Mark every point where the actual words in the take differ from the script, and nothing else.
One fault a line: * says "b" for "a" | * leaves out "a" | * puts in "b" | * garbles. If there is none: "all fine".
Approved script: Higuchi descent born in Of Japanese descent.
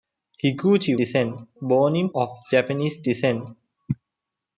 all fine